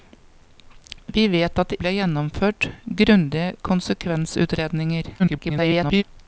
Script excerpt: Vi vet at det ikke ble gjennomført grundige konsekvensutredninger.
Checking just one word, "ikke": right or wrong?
wrong